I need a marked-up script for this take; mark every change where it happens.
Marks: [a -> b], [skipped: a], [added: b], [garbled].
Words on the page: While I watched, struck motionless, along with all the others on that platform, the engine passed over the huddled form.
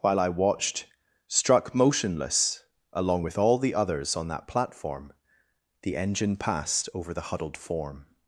While I watched, struck motionless, along with all the others on that platform, the engine passed over the huddled form.